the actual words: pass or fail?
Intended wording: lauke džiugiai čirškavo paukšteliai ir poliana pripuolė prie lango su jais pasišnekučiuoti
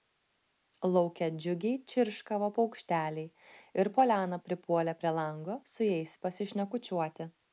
pass